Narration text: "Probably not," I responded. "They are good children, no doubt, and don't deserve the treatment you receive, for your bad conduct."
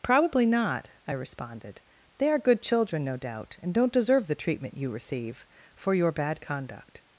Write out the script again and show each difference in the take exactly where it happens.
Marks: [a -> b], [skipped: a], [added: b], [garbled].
"Probably not," I responded. "They are good children, no doubt, and don't deserve the treatment you receive, for your bad conduct."